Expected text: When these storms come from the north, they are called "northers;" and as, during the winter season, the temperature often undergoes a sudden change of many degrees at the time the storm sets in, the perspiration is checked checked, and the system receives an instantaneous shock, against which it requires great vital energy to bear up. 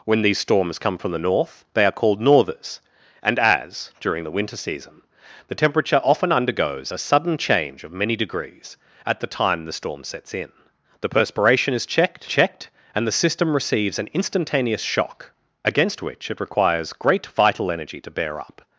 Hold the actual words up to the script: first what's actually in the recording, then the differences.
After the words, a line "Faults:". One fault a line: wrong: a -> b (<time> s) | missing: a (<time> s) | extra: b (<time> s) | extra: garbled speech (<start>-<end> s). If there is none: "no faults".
When these storms come from the north, they are called "northers;" and as, during the winter season, the temperature often undergoes a sudden change of many degrees at the time the storm sets in, the perspiration is checked checked, and the system receives an instantaneous shock, against which it requires great vital energy to bear up.
Faults:
no faults